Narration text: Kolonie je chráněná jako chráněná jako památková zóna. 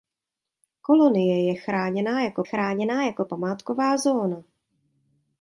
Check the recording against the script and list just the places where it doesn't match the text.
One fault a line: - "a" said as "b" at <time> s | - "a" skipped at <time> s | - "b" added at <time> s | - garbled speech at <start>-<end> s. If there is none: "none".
none